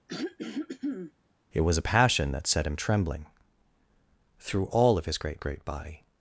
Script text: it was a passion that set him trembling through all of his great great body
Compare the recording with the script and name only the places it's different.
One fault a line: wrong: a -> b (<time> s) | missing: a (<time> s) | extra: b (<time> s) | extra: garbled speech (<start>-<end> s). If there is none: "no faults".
no faults